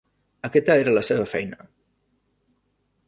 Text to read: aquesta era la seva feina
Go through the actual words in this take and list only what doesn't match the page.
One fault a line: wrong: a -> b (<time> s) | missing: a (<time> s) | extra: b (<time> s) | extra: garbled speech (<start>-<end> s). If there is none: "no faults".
no faults